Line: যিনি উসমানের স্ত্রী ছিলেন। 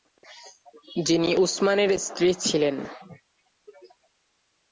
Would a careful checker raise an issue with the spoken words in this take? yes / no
no